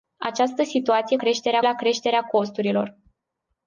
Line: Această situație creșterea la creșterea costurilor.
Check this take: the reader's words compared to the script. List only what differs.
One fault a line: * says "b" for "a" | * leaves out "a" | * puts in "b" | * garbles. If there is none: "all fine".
all fine